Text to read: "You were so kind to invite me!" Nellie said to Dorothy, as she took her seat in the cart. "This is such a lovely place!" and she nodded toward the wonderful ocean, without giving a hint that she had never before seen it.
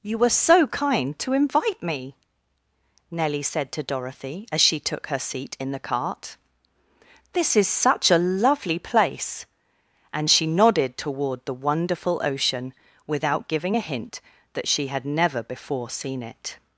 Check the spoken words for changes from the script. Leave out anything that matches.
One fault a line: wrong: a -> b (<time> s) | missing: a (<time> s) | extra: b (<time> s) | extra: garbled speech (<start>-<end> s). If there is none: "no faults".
no faults